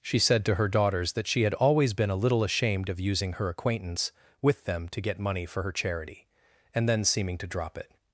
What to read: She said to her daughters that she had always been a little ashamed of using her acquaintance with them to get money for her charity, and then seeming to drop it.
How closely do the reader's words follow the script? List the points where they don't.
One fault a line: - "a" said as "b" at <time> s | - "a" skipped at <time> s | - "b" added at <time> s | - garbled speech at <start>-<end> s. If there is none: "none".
none